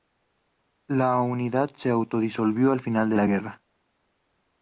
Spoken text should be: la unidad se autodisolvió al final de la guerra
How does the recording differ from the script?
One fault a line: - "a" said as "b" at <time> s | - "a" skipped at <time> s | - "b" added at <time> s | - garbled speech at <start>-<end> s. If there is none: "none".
none